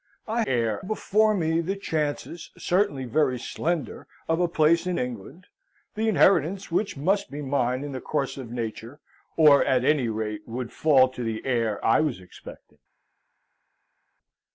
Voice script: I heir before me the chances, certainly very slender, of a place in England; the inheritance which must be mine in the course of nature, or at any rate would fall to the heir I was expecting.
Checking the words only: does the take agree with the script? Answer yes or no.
yes